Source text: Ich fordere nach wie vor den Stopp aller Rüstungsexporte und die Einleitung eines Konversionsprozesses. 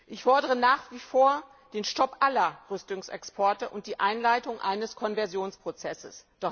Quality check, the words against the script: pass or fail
pass